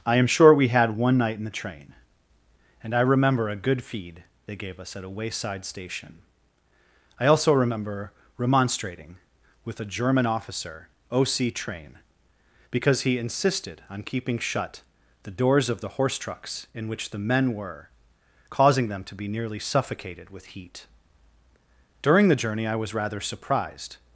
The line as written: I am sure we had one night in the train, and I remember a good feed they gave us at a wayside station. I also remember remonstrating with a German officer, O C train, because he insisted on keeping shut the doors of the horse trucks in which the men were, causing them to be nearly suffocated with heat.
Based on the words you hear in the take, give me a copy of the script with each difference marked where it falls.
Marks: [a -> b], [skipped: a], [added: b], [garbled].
I am sure we had one night in the train, and I remember a good feed they gave us at a wayside station. I also remember remonstrating with a German officer, O C train, because he insisted on keeping shut the doors of the horse trucks in which the men were, causing them to be nearly suffocated with heat. [added: During the journey I was rather surprised]